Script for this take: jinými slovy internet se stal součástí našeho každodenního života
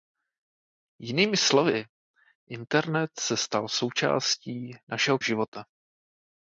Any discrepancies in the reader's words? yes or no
yes